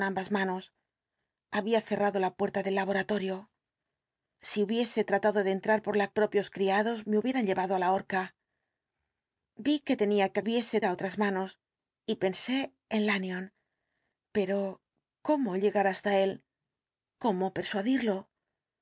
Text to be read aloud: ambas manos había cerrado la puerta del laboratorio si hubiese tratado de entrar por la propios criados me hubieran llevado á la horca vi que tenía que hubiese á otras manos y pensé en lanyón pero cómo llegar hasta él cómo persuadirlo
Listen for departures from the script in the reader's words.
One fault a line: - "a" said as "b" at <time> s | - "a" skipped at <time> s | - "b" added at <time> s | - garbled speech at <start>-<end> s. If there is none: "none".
none